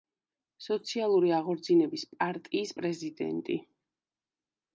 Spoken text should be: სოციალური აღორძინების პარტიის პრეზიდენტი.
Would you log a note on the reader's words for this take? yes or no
no